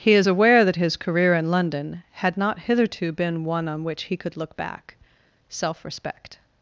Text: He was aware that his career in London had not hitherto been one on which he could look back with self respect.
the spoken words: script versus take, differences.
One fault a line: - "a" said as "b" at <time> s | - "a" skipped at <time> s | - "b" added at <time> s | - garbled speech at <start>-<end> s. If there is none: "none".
- "was" said as "is" at 0.1 s
- "with" skipped at 4.9 s